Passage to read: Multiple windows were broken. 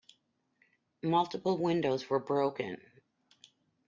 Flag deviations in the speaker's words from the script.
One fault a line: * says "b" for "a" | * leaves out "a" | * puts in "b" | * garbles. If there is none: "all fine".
all fine